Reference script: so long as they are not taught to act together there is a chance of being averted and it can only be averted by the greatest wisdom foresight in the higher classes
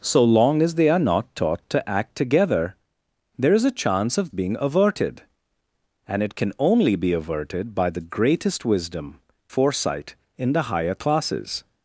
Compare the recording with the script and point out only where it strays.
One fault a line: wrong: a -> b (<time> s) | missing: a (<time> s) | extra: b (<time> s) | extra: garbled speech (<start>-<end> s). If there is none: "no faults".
no faults